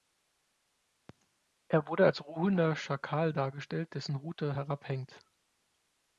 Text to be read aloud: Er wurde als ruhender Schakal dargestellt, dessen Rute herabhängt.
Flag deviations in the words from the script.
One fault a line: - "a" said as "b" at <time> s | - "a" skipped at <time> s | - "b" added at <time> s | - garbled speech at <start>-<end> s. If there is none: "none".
none